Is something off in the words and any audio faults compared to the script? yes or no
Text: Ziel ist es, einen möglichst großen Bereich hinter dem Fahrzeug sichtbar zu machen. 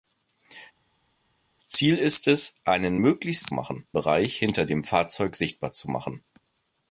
yes